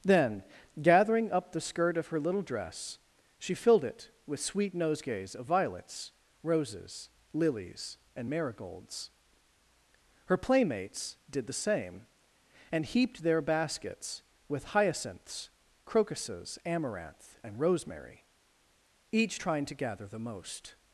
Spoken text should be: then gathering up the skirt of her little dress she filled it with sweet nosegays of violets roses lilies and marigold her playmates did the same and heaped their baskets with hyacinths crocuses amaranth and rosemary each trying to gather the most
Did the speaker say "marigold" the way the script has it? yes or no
no